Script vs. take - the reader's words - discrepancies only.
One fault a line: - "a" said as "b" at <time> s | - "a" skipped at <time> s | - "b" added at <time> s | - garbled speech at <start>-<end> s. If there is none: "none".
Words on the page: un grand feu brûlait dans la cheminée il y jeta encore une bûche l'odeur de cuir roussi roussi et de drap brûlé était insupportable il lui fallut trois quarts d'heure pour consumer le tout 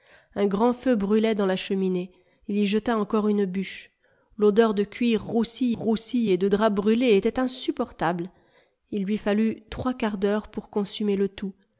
none